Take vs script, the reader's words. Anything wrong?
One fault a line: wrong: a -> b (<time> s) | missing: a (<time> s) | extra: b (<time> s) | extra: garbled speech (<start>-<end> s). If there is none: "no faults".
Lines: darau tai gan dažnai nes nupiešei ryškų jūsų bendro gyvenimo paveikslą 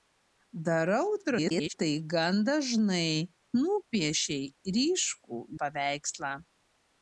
extra: garbled speech (1.2-1.7 s)
missing: nes (3.1 s)
missing: jūsų bendro gyvenimo (5.4 s)